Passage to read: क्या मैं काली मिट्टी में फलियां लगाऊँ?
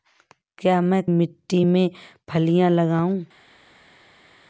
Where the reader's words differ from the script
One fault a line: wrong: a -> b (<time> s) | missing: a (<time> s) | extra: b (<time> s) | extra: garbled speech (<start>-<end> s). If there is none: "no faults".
missing: काली (1.0 s)